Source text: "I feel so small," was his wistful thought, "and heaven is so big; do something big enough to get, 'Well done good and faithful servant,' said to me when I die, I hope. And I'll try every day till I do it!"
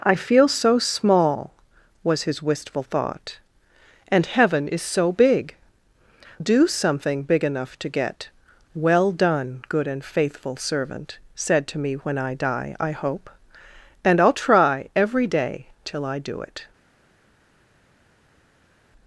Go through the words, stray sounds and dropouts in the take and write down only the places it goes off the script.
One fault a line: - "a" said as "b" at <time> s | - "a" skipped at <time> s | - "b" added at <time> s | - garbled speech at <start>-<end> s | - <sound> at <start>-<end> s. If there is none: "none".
none